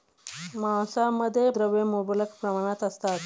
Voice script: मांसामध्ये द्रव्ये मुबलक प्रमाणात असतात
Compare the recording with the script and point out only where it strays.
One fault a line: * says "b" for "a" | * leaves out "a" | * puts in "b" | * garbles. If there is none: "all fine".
all fine